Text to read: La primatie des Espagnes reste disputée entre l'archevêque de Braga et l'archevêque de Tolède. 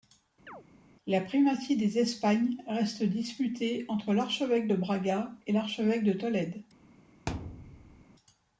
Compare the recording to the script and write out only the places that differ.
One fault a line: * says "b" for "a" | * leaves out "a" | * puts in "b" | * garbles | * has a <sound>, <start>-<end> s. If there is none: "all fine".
* has a chirp, 0.5-0.6 s
* has a thud, 7.3-8.1 s